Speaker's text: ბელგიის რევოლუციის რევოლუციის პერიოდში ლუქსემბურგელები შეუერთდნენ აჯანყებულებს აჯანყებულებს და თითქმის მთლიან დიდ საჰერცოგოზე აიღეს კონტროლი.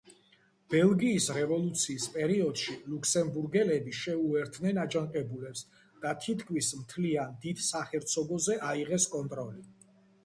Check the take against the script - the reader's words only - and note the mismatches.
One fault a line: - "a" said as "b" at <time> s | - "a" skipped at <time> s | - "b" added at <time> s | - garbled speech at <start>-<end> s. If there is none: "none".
- "რევოლუციის" skipped at 2.1 s
- "აჯანყებულებს" skipped at 5.6 s